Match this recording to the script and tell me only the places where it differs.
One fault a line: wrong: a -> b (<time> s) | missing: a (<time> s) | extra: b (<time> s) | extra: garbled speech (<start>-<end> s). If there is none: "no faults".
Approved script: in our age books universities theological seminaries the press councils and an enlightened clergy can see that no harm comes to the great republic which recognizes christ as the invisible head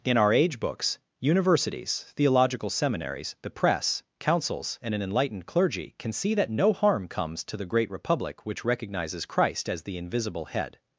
no faults